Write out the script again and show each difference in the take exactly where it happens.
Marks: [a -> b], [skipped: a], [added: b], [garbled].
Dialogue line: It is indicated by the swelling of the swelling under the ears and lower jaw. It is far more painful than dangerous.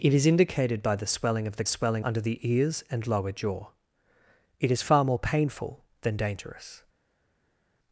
It is indicated by the swelling of the swelling under the ears and lower jaw. It is far more painful than dangerous.